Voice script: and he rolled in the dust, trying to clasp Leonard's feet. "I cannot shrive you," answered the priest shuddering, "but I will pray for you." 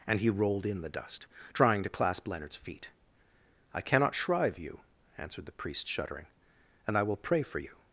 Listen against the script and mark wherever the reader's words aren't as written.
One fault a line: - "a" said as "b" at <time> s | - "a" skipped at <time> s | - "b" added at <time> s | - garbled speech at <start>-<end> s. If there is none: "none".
- "but" said as "and" at 6.9 s